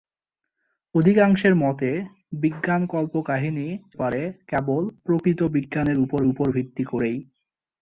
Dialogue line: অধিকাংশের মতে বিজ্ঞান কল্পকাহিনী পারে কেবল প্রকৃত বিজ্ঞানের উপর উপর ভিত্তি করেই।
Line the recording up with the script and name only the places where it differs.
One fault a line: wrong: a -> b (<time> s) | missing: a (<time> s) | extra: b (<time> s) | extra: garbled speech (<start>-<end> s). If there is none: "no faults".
no faults